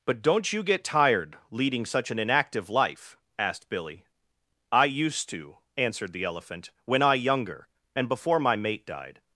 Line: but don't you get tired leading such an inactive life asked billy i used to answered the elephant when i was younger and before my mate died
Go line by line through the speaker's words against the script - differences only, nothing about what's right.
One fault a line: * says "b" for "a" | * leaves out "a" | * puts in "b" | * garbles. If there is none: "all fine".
* leaves out "was"